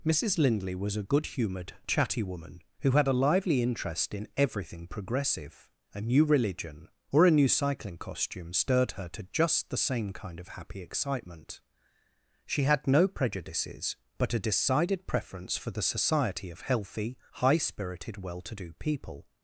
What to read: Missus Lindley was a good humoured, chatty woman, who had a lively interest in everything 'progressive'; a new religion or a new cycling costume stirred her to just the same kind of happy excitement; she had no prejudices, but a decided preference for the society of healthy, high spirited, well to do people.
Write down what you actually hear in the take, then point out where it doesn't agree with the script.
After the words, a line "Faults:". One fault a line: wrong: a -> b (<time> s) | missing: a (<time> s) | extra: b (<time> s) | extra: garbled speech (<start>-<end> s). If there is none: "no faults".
Missus Lindley was a good humoured, chatty woman, who had a lively interest in everything 'progressive'; a new religion or a new cycling costume stirred her to just the same kind of happy excitement; she had no prejudices, but a decided preference for the society of healthy, high spirited, well to do people.
Faults:
no faults